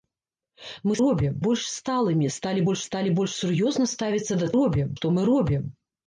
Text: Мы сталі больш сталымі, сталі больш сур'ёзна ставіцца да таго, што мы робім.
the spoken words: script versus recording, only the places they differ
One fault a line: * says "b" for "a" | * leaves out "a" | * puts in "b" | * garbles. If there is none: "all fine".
* says "робім" for "сталі"
* puts in "сталі больш"
* says "робім" for "таго"